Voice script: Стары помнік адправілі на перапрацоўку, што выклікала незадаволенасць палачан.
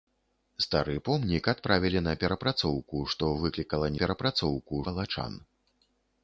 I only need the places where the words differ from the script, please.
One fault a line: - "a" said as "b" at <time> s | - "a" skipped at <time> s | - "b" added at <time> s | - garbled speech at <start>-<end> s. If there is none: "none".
- "незадаволенасць" said as "перапрацоўку" at 4.0 s